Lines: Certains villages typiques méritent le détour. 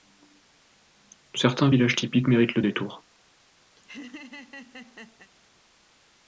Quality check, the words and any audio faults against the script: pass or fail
fail